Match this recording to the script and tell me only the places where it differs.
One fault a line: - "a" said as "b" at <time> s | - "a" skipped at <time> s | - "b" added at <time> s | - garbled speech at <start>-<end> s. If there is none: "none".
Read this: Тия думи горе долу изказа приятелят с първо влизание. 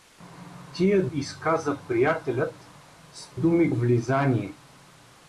- "думи горе долу" skipped at 1.1 s
- "първо" said as "думи" at 3.4 s